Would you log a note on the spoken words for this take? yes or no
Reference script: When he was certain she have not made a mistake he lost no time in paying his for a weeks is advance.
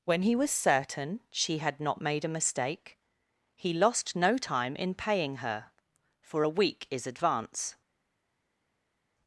yes